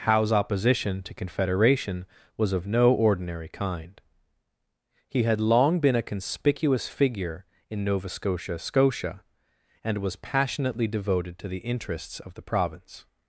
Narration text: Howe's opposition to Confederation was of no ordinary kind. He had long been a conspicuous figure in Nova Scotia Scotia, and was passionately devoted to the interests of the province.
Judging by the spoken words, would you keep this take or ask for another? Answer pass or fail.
pass